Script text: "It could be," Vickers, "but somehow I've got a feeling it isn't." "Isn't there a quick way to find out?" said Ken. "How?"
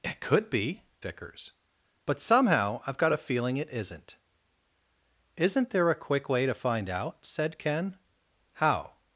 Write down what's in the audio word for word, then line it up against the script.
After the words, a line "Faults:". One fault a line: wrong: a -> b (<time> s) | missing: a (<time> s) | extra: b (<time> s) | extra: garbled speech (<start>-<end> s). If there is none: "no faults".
"It could be," Vickers, "but somehow I've got a feeling it isn't." "Isn't there a quick way to find out?" said Ken. "How?"
Faults:
no faults